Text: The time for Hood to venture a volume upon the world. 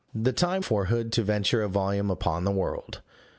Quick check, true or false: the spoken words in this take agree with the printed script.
true